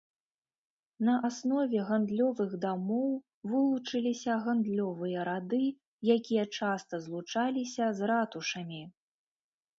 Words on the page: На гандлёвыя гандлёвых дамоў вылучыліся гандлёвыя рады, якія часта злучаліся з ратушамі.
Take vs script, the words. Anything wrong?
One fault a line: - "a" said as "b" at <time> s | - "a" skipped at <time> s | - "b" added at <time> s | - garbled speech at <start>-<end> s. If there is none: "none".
- "гандлёвыя" said as "аснове" at 1.3 s